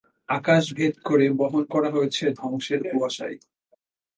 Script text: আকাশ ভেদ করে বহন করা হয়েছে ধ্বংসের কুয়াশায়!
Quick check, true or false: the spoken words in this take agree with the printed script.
true